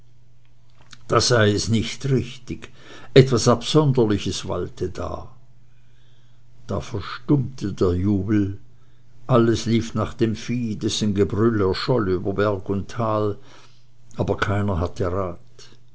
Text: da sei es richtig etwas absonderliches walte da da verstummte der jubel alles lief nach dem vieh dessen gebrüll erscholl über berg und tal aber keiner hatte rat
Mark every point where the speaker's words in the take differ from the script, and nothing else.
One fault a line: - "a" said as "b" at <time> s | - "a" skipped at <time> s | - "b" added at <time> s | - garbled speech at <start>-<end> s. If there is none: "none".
- "nicht" added at 1.7 s